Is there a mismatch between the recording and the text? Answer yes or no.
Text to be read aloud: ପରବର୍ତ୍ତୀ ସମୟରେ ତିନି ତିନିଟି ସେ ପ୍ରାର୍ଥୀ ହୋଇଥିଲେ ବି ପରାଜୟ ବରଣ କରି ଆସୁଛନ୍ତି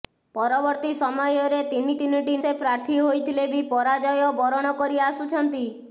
no